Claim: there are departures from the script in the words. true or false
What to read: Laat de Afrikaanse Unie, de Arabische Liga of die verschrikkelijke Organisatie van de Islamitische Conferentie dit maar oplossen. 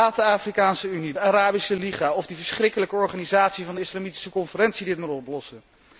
false